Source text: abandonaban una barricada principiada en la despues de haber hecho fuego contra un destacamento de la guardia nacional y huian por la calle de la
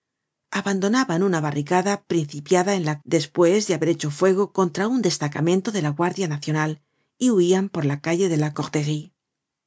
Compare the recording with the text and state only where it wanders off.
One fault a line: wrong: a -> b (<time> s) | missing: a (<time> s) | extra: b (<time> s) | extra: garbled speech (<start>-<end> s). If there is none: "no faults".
no faults